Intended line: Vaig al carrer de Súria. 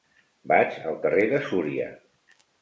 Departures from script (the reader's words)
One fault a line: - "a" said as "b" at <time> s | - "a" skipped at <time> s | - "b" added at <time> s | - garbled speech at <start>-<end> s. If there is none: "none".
none